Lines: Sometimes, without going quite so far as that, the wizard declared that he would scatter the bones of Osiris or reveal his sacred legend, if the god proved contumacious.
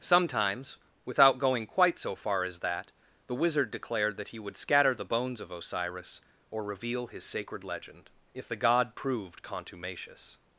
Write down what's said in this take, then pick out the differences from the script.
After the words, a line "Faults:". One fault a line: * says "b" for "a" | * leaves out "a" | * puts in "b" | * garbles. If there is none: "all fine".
Sometimes, without going quite so far as that, the wizard declared that he would scatter the bones of Osiris or reveal his sacred legend, if the god proved contumacious.
Faults:
all fine